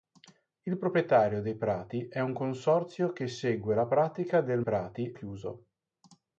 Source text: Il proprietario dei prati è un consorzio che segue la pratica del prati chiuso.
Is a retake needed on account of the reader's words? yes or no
no